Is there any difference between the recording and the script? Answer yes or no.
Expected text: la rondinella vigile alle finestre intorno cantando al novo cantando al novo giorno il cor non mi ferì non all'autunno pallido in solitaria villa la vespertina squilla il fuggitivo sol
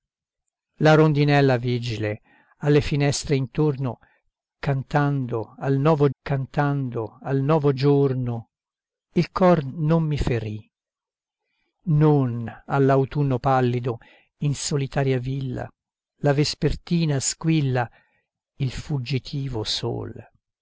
no